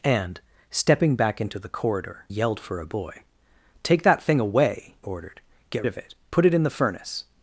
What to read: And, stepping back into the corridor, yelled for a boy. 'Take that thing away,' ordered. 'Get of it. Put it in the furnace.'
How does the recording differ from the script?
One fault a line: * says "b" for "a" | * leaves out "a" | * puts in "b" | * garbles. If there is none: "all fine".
all fine